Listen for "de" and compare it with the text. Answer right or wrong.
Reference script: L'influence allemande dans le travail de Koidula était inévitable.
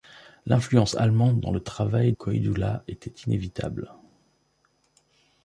wrong